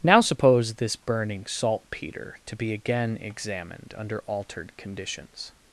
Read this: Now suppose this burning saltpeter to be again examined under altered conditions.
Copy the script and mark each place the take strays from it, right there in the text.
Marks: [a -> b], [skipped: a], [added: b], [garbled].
Now suppose this burning saltpeter to be again examined under altered conditions.